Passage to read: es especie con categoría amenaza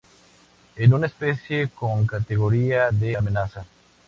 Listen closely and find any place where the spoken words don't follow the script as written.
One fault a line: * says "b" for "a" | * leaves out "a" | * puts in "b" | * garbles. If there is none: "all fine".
* puts in "una"
* puts in "de"